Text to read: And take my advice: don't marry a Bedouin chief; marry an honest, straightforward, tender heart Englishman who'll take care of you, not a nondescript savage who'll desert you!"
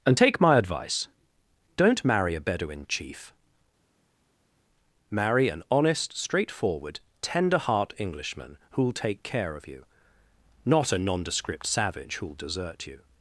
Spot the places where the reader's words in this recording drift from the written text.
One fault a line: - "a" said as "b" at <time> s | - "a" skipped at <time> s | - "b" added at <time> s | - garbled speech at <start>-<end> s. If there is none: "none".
none